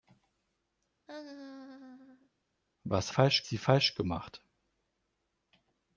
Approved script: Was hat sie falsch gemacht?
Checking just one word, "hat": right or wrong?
wrong